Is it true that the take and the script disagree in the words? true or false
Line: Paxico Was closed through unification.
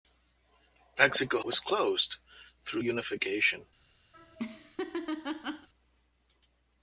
false